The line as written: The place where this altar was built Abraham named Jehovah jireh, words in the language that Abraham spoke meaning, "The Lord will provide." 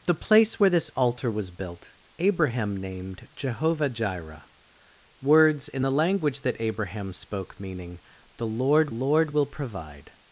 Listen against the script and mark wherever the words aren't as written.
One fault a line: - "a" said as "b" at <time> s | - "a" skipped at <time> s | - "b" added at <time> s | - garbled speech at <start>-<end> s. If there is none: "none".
- "Lord" added at 8.9 s